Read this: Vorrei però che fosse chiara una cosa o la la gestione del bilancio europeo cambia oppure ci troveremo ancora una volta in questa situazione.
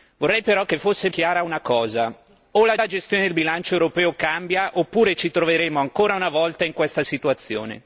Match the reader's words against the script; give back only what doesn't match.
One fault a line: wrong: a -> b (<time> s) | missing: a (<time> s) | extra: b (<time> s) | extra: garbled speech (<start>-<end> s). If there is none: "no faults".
no faults